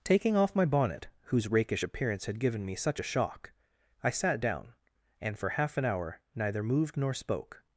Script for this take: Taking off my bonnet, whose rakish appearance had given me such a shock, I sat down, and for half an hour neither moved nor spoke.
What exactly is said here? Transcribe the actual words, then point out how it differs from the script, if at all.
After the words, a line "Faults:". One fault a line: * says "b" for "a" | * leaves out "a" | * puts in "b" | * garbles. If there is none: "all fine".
Taking off my bonnet, whose rakish appearance had given me such a shock, I sat down, and for half an hour neither moved nor spoke.
Faults:
all fine